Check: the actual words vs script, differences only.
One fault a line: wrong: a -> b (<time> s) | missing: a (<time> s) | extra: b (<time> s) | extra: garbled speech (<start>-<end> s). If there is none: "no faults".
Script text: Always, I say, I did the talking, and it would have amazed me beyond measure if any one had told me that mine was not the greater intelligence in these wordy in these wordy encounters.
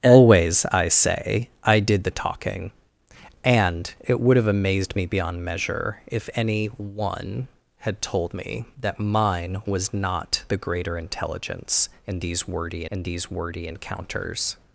no faults